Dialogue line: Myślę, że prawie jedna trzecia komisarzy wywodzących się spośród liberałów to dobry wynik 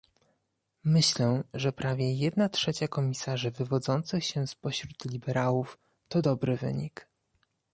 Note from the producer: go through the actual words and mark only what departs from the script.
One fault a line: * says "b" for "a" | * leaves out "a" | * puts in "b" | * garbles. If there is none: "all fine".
all fine